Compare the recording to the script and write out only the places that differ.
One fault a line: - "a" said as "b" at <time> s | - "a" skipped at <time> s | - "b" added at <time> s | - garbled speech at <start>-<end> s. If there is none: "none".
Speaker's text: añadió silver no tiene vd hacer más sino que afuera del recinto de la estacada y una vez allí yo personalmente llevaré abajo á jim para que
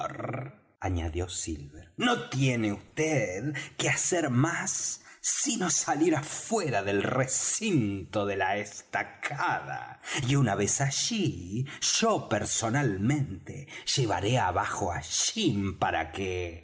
- "que" added at 3.8 s
- "que" said as "salir" at 5.7 s